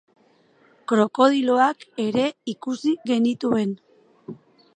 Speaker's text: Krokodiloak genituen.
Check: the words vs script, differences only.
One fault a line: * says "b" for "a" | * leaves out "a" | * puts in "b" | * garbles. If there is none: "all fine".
* puts in "ere ikusi"